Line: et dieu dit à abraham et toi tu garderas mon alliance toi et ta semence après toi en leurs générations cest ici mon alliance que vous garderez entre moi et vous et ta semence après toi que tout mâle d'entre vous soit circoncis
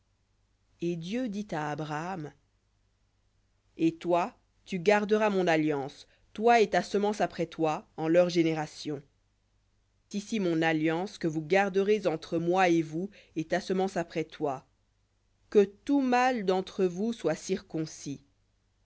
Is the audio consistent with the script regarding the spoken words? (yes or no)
no